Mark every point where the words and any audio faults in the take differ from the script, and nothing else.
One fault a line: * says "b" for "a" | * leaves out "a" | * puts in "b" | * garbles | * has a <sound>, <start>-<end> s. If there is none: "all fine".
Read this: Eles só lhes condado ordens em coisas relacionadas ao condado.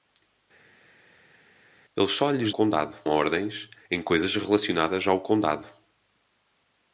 all fine